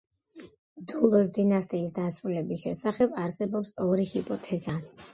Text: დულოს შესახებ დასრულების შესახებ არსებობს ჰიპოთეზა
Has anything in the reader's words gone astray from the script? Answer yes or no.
yes